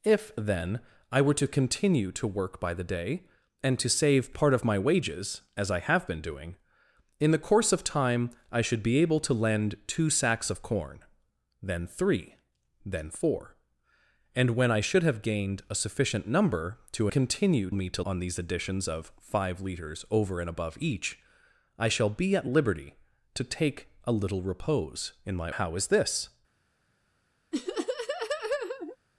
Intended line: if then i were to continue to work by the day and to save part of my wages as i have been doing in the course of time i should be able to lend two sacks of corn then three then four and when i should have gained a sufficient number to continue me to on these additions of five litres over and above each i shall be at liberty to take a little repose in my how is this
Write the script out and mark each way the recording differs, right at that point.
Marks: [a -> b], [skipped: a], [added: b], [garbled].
if then i were to continue to work by the day and to save part of my wages as i have been doing in the course of time i should be able to lend two sacks of corn then three then four and when i should have gained a sufficient number to continue me to on these additions of five litres over and above each i shall be at liberty to take a little repose in my how is this